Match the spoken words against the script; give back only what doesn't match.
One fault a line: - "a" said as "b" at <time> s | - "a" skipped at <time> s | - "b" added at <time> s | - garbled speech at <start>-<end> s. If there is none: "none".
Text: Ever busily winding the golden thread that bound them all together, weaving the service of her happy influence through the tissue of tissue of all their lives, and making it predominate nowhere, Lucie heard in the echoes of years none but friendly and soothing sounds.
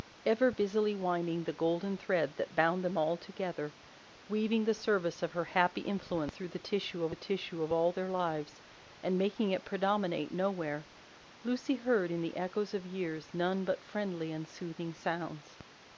none